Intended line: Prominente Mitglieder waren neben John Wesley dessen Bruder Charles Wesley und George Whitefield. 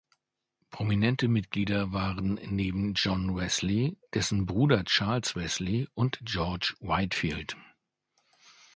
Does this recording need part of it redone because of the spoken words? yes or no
no